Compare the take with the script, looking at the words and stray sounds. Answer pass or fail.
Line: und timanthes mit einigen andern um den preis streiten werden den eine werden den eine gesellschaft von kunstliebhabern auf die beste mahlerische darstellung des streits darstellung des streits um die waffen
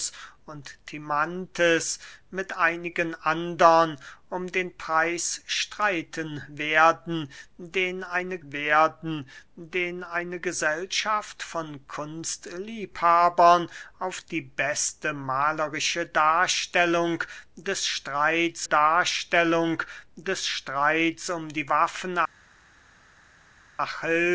pass